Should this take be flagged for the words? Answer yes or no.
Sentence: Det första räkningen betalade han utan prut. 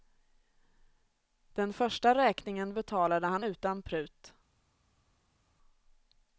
yes